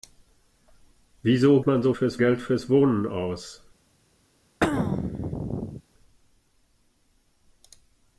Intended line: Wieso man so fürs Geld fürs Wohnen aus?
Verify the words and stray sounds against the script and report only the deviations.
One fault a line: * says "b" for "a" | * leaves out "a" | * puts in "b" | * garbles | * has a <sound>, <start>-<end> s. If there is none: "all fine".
* has a throat clearing, 4.6-5.8 s